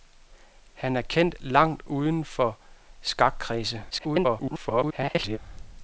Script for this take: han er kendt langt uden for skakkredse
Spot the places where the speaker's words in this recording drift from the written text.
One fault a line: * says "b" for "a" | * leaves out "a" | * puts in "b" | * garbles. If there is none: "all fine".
* garbles